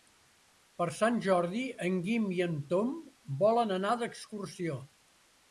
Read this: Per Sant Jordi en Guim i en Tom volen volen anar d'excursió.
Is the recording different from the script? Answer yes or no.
yes